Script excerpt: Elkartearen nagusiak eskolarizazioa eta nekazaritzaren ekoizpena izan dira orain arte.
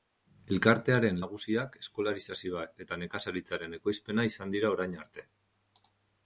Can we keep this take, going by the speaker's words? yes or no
yes